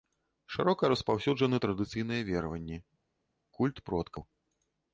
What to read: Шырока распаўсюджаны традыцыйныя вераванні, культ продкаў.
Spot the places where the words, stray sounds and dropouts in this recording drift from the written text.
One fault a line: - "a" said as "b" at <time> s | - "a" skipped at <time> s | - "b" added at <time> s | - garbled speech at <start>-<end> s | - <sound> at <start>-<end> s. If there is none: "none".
none